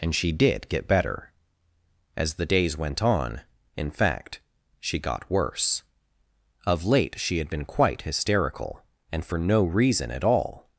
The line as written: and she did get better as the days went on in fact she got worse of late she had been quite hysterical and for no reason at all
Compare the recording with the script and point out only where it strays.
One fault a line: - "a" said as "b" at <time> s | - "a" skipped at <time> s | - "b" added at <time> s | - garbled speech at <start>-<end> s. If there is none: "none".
none